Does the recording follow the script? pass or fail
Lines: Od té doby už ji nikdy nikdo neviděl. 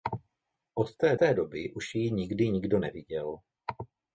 fail